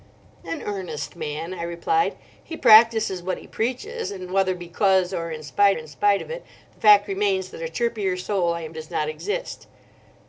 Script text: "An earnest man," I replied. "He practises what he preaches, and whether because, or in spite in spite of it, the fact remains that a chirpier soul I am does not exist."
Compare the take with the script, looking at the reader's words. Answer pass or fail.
pass